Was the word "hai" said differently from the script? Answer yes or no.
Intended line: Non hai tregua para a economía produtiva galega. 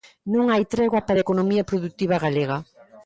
no